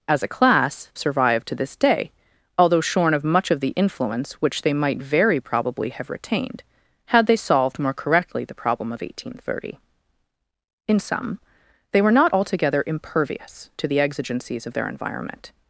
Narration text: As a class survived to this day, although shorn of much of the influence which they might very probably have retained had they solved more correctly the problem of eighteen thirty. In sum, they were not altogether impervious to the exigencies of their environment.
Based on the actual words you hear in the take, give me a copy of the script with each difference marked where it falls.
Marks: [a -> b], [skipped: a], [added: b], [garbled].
As a class survived to this day, although shorn of much of the influence which they might very probably have retained had they solved more correctly the problem of eighteen thirty. In sum, they were not altogether impervious to the exigencies of their environment.